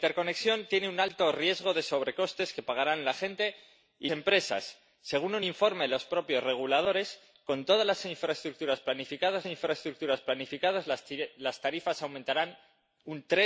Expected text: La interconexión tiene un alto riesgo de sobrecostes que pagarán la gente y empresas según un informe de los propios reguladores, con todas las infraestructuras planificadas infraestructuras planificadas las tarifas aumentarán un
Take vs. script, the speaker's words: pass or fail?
pass